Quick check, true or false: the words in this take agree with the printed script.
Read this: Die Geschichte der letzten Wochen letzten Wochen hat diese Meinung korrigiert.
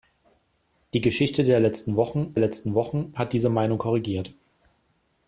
true